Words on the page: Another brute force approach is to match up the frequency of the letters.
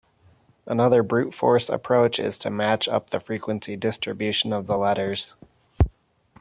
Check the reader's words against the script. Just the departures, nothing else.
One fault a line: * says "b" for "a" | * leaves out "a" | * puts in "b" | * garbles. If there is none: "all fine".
* puts in "distribution"